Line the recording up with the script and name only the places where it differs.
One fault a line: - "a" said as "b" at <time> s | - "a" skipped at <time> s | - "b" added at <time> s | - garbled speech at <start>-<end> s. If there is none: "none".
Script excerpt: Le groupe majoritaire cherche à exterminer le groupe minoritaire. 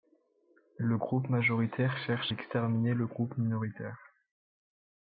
- "à" skipped at 2.3 s